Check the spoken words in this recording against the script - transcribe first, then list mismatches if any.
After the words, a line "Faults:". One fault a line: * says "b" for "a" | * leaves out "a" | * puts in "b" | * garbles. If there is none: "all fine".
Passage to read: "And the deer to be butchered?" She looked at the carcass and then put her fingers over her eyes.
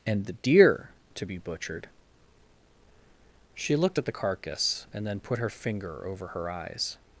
"And the deer to be butchered?" She looked at the carcass and then put her finger over her eyes.
Faults:
* says "finger" for "fingers"